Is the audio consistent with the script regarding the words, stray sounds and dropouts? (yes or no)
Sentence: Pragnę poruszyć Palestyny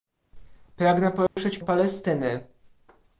no